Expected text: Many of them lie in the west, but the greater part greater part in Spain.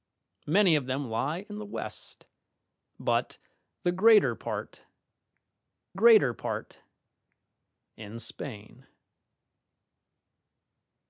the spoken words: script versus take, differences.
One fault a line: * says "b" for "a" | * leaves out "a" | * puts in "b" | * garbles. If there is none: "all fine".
all fine